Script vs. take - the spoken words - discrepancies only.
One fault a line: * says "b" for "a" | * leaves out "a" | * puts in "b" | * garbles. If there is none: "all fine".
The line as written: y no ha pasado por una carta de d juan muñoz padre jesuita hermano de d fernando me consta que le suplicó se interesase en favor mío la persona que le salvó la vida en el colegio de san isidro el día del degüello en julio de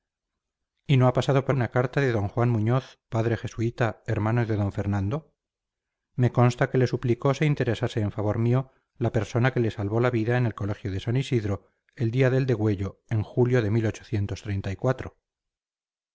all fine